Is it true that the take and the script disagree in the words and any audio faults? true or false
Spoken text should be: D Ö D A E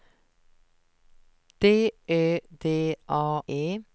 false